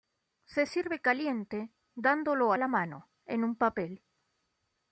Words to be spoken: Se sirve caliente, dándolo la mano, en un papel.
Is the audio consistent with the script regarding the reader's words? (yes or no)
yes